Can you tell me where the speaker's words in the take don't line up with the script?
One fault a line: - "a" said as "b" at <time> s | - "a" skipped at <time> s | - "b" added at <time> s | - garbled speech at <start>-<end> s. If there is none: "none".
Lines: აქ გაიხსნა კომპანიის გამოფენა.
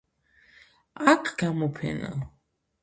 - "გაიხსნა კომპანიის" skipped at 1.3 s